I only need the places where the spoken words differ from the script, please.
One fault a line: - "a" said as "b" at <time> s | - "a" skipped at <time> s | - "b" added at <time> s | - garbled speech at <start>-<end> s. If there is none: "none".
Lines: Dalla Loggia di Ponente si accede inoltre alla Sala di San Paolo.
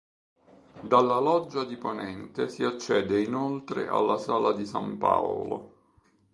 none